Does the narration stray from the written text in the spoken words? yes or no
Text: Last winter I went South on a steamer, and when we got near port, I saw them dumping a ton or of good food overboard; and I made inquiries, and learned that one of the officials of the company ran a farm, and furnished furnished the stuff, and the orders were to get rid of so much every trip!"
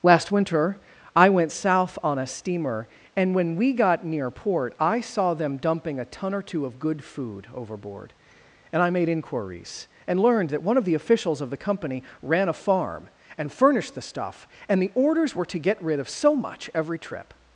yes